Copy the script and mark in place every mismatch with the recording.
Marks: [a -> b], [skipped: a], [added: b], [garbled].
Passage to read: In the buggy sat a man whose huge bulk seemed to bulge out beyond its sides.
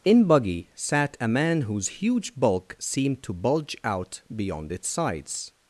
In [skipped: the] buggy sat a man whose huge bulk seemed to bulge out beyond its sides.